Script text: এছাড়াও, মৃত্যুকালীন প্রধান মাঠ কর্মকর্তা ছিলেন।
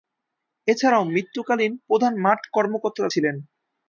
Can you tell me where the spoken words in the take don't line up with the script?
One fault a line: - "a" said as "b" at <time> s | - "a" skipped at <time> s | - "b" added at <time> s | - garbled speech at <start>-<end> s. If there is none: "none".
none